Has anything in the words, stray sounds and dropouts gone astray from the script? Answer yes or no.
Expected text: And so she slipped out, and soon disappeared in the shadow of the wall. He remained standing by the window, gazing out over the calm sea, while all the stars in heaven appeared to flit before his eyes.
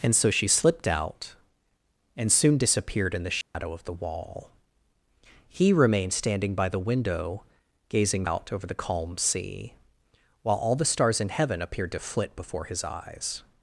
yes